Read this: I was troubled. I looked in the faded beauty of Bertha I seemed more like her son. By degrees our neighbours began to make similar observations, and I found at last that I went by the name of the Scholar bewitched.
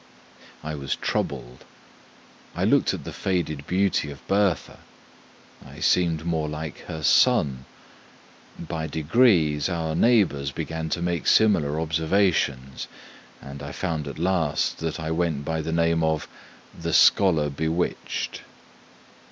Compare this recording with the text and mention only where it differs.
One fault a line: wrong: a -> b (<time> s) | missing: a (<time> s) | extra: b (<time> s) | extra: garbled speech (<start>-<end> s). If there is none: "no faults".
wrong: in -> at (2.9 s)